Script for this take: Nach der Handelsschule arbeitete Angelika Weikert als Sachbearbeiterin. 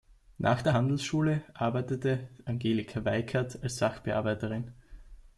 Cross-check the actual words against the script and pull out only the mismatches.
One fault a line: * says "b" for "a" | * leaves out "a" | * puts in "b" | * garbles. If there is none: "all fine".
all fine